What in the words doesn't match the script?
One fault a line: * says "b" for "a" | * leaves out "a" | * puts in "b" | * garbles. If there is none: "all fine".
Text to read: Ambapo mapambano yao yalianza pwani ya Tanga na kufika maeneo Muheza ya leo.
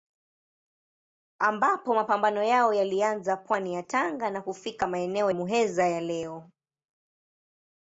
all fine